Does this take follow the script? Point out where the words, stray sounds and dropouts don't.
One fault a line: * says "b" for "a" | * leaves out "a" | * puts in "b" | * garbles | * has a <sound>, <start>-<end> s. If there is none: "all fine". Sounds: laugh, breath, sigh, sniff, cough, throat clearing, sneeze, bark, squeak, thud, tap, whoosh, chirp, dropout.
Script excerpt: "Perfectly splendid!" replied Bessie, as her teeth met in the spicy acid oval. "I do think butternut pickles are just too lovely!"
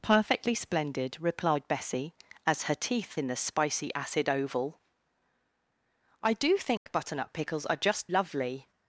* leaves out "met"
* has a dropout, 6.8-6.9 s
* leaves out "too"